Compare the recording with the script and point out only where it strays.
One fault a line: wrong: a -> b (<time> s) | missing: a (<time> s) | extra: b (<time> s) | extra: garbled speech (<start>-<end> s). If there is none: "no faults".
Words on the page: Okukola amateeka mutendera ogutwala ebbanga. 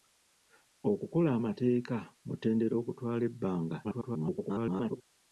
extra: garbled speech (3.8-5.0 s)